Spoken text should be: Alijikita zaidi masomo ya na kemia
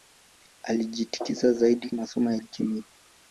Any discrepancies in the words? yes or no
no